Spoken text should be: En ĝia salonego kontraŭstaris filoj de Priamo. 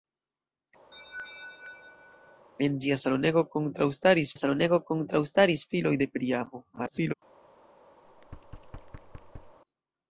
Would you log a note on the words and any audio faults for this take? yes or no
yes